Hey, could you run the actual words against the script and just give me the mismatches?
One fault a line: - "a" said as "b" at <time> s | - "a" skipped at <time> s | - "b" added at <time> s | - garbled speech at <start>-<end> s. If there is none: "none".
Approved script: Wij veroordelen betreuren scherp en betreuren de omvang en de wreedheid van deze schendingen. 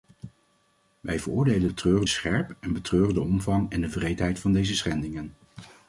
none